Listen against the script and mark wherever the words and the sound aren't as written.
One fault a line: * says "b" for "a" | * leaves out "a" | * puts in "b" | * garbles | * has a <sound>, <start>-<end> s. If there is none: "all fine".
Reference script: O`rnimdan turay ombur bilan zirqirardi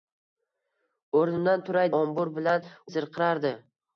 all fine